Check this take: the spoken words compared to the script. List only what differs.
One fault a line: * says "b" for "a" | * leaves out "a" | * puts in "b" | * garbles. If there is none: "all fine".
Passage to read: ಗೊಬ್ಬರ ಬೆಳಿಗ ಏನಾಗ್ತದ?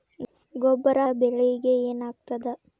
all fine